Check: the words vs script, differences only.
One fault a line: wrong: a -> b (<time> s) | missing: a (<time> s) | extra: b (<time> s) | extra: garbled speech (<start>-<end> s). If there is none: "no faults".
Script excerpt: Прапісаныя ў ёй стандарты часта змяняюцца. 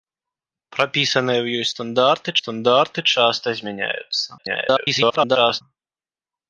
extra: стандарты (2.4 s)
extra: garbled speech (4.4-5.6 s)